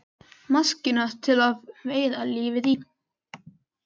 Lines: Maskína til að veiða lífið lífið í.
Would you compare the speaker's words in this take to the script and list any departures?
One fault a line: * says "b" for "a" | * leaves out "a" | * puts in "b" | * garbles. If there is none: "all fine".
* leaves out "lífið"